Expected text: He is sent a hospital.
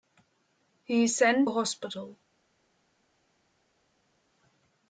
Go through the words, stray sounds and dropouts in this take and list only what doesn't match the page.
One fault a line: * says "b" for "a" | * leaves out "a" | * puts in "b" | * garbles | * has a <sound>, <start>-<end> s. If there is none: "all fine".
all fine